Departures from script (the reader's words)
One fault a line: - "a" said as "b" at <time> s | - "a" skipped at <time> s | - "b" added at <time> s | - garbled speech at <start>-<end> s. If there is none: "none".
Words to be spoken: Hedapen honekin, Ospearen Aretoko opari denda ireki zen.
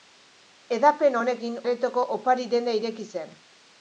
- "Ospearen" skipped at 1.6 s